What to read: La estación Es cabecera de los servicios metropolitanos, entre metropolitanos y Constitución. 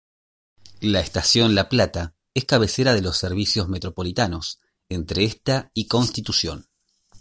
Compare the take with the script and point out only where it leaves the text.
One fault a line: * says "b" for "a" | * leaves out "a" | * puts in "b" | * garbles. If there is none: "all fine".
* puts in "La Plata"
* says "esta" for "metropolitanos"